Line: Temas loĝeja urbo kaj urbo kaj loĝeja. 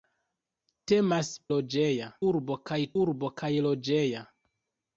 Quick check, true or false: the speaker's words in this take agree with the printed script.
true